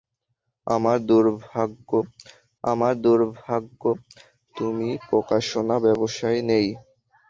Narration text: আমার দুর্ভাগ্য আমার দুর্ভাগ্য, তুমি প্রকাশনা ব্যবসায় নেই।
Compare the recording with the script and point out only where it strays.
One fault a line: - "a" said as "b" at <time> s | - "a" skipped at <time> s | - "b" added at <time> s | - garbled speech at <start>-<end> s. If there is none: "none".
none